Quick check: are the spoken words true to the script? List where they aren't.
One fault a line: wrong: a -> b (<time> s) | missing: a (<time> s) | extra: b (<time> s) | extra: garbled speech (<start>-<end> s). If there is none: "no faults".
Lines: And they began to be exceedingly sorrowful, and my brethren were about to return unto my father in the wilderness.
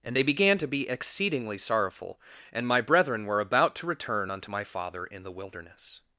no faults